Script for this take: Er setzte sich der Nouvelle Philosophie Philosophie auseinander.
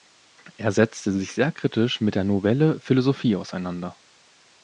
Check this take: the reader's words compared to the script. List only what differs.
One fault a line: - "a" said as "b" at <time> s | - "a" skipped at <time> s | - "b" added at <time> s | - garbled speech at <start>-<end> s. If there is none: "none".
- "sehr kritisch mit" added at 1.3 s
- "Philosophie" skipped at 3.4 s